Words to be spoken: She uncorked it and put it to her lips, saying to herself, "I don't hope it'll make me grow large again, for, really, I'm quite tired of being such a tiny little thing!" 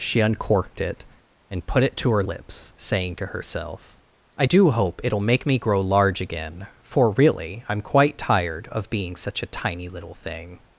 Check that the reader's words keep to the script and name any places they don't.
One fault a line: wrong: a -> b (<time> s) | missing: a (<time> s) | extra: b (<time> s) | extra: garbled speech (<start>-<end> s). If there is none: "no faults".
wrong: don't -> do (4.4 s)